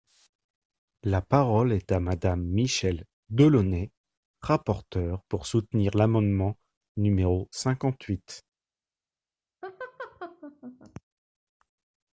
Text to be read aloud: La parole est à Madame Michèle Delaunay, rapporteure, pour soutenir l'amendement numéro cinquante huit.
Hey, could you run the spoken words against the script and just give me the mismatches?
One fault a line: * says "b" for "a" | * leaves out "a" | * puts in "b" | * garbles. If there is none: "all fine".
all fine